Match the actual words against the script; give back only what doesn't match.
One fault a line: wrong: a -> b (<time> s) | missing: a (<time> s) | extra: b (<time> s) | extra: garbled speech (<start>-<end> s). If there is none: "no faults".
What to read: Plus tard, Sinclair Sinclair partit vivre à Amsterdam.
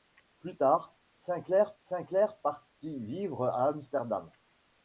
no faults